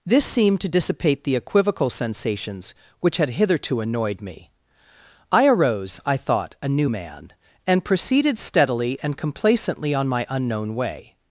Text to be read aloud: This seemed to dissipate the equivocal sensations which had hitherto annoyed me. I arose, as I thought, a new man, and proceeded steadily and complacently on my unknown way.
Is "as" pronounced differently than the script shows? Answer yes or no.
yes